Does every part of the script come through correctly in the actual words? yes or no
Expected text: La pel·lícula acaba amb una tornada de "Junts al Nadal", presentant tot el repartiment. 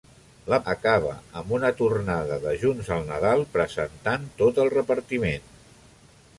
no